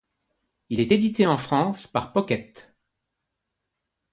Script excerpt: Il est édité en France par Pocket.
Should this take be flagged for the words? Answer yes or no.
no